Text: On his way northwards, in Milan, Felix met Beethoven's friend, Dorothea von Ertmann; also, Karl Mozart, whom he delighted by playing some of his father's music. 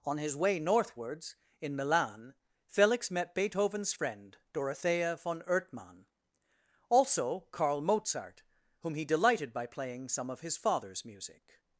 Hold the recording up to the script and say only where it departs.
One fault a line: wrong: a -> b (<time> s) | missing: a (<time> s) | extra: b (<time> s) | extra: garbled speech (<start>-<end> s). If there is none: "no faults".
no faults